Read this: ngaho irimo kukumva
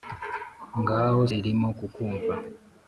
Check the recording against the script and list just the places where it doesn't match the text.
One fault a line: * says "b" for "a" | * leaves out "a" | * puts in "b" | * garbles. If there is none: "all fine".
all fine